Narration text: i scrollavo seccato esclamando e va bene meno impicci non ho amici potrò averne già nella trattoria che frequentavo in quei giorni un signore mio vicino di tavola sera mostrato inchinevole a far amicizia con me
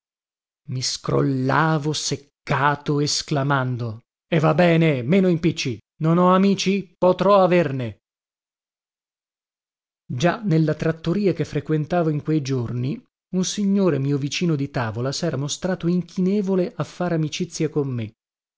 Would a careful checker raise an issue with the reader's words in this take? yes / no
no